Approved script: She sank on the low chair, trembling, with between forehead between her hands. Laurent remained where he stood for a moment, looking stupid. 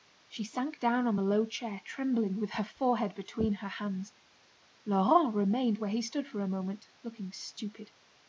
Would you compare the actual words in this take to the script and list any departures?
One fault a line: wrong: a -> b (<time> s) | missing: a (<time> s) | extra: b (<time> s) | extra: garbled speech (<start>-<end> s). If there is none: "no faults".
extra: down (0.8 s)
wrong: between -> her (2.5 s)